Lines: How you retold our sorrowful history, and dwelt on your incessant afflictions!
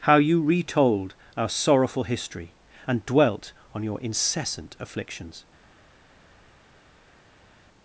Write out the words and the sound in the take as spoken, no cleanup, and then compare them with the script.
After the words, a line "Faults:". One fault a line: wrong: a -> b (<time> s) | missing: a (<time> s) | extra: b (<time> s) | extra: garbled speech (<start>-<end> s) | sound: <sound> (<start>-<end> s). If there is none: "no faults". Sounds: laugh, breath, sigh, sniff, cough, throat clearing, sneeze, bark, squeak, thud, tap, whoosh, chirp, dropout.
How you retold our sorrowful history, and dwelt on your incessant afflictions!
Faults:
no faults